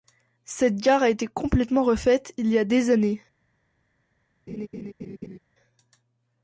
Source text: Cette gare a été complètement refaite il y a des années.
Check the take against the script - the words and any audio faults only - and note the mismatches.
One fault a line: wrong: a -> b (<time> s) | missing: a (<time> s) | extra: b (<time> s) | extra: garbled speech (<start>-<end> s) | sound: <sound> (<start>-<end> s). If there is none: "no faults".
sound: laugh (4.5-5.4 s)